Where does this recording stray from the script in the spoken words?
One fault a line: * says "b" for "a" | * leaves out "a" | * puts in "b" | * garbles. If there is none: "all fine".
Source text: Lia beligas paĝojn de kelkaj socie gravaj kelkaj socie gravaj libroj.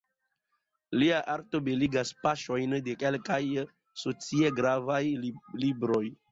* puts in "arto"
* leaves out "kelkaj socie gravaj"